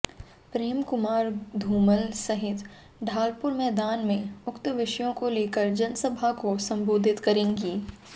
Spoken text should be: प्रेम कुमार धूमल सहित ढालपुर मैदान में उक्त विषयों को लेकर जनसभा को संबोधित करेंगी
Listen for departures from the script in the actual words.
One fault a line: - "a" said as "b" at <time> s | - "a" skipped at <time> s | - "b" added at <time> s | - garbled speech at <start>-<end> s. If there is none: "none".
none